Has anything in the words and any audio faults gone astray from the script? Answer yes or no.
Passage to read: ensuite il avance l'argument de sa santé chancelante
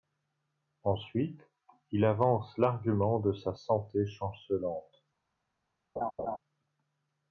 yes